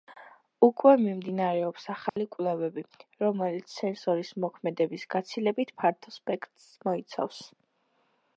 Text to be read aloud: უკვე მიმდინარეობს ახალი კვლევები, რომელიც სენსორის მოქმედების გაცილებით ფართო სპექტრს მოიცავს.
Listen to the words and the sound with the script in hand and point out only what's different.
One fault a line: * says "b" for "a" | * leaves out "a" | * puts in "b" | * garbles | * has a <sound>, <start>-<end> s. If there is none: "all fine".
* has a dropout, 2.1-2.2 s